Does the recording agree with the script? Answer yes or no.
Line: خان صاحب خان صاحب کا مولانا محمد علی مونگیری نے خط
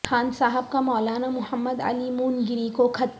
no